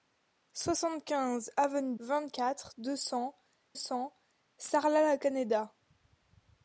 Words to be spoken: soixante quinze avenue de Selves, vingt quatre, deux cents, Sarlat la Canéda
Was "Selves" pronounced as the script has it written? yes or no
no